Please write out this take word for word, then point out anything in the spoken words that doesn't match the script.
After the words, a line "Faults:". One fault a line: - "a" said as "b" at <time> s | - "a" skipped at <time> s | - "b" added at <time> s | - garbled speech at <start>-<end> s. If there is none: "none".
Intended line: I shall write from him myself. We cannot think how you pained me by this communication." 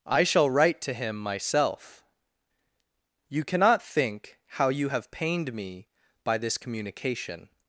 I shall write to him myself. You cannot think how you have pained me by this communication."
Faults:
- "from" said as "to" at 0.8 s
- "We" said as "You" at 3.3 s
- "have" added at 4.9 s